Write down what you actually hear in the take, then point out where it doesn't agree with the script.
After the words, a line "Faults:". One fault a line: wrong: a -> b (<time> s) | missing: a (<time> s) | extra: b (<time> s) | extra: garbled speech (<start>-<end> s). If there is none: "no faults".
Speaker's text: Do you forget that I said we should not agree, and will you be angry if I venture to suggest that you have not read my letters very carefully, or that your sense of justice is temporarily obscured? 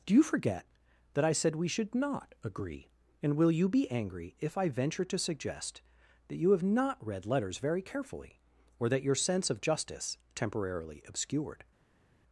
Do you forget that I said we should not agree, and will you be angry if I venture to suggest that you have not read letters very carefully, or that your sense of justice temporarily obscured?
Faults:
missing: my (7.2 s)
missing: is (10.2 s)